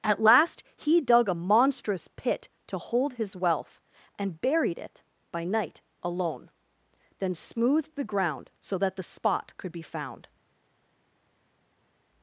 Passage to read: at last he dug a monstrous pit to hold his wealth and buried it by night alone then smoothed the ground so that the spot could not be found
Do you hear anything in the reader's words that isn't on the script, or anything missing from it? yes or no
yes